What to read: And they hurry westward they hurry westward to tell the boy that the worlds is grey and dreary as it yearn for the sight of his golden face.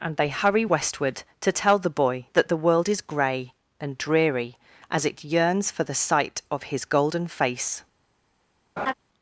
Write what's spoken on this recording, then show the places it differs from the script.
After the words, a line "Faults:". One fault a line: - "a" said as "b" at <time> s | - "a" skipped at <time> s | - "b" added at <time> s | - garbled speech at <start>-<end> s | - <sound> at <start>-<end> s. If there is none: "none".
And they hurry westward to tell the boy that the world is grey and dreary as it yearns for the sight of his golden face.
Faults:
- "they hurry westward" skipped at 1.2 s
- "worlds" said as "world" at 2.6 s
- "yearn" said as "yearns" at 5.3 s
- laugh at 8.8-8.9 s